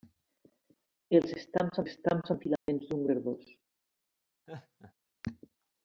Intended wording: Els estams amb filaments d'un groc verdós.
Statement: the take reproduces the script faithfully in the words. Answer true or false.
false